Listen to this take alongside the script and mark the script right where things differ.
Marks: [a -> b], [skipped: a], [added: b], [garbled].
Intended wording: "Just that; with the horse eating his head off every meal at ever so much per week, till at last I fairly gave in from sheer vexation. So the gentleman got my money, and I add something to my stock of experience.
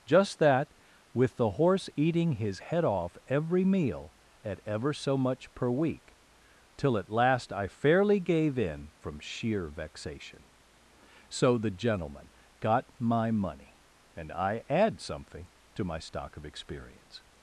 "Just that; with the horse eating his head off every meal at ever so much per week, till at last I fairly gave in from sheer vexation. So the gentleman got my money, and I add something to my stock of experience.